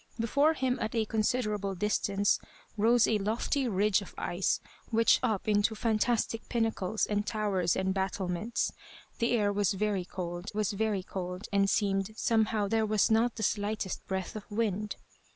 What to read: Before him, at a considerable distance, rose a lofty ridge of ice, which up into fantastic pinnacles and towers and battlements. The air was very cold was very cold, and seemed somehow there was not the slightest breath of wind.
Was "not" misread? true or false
false